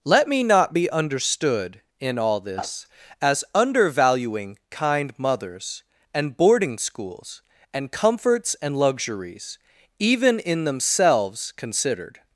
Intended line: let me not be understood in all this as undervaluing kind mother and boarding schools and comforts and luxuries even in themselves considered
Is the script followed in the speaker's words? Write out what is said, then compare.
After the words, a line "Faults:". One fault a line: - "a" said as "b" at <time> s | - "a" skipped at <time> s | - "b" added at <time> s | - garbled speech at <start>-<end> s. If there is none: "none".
let me not be understood in all this as undervaluing kind mothers and boarding schools and comforts and luxuries even in themselves considered
Faults:
- "mother" said as "mothers" at 5.2 s